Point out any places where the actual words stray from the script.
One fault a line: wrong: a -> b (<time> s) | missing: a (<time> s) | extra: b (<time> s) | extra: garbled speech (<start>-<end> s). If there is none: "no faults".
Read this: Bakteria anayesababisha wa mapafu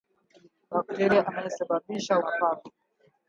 no faults